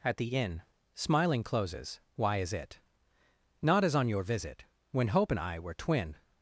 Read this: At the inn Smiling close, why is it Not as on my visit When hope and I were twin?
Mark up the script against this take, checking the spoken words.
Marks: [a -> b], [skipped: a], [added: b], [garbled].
At the inn Smiling [close, -> closes] why is it Not as on [my -> your] visit When hope and I were twin?